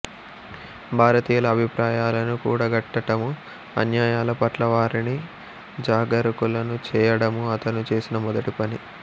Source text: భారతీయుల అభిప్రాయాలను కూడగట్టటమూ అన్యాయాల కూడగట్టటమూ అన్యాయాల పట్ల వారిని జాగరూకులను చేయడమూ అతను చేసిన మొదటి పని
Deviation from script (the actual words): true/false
true